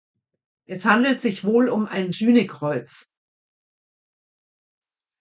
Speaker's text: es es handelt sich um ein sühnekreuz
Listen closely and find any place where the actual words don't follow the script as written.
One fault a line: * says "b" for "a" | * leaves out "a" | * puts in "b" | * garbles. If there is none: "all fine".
* leaves out "es"
* puts in "wohl"